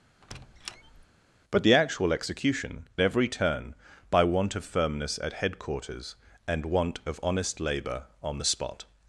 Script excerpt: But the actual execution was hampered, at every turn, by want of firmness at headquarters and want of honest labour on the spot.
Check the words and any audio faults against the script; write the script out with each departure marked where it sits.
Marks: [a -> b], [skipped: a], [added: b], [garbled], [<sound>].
[squeak] But the actual execution [skipped: was hampered, at] every turn, by want of firmness at headquarters and want of honest labour on the spot.